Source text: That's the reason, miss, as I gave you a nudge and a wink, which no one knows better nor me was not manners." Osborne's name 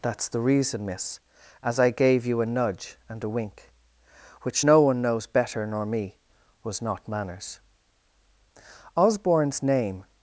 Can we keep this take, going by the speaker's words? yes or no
yes